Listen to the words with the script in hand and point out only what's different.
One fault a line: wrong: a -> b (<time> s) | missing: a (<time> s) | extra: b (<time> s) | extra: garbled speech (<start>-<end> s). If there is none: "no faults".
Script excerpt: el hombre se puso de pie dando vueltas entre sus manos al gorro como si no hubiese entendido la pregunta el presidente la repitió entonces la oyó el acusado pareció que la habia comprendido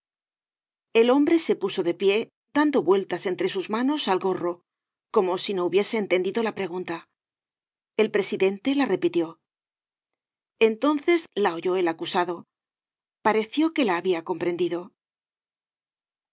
no faults